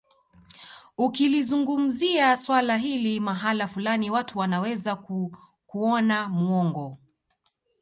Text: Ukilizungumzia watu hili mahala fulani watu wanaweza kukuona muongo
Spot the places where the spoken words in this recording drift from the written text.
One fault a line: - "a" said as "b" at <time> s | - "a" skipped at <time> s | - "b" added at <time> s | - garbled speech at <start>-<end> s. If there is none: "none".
- "watu" said as "swala" at 2.4 s